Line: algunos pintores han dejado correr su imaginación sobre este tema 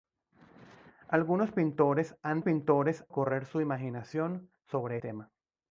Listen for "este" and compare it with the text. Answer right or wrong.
wrong